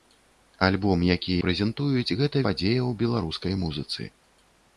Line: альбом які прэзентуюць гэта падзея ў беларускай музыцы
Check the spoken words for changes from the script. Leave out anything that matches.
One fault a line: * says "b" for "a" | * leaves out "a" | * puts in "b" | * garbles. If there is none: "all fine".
all fine